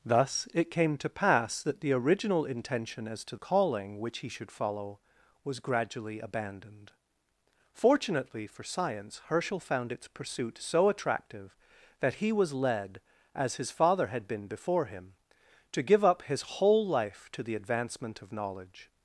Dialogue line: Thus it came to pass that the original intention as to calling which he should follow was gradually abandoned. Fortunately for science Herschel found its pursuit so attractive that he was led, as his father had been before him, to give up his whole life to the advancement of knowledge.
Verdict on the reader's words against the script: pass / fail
pass